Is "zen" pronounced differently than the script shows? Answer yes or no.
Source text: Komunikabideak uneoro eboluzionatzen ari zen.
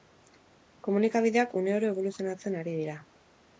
yes